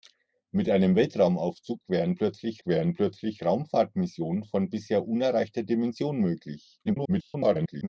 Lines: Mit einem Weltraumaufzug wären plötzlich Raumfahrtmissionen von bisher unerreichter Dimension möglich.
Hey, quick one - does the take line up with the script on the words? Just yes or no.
no